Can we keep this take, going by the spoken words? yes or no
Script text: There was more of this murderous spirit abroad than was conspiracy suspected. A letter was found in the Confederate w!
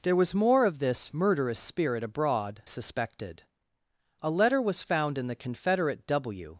no